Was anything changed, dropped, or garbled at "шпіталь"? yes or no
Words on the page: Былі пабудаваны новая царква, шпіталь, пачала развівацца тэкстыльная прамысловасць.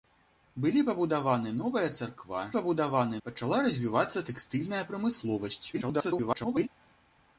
yes